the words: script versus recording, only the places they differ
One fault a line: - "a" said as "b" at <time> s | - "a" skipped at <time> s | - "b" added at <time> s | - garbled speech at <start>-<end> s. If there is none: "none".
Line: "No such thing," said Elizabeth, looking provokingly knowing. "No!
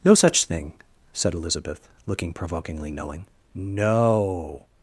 none